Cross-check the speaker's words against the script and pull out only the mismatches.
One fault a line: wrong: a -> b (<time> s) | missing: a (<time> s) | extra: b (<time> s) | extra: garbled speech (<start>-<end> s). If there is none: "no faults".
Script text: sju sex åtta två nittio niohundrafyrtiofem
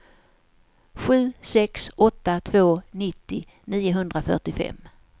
no faults